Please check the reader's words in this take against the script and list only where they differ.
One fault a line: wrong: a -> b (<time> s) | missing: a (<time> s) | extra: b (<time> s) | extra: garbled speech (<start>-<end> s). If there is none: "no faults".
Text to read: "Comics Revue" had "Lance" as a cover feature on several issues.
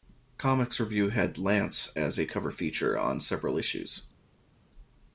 no faults